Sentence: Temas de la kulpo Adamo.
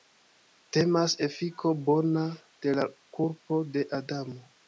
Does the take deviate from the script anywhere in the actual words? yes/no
yes